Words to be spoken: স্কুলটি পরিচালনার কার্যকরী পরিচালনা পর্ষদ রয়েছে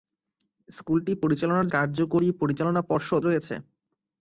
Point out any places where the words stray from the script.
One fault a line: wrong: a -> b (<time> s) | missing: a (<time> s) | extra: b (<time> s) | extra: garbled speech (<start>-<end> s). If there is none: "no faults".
no faults